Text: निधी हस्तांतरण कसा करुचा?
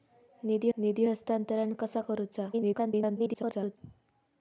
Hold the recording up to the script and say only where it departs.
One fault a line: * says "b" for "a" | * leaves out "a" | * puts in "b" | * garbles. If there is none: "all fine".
* puts in "निधी"
* garbles